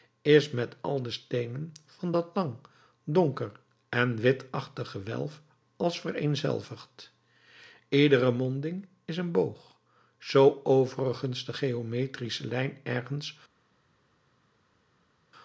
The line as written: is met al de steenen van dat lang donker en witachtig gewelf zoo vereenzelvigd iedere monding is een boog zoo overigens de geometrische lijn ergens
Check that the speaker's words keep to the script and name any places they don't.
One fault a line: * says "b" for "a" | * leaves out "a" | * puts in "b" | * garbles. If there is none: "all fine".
* says "als" for "zoo"